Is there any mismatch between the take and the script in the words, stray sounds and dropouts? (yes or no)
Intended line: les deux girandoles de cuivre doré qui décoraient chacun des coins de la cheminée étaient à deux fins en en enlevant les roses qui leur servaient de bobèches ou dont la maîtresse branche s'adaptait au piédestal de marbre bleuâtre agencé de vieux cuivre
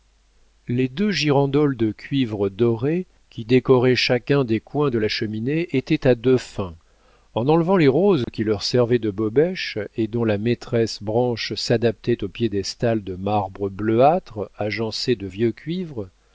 yes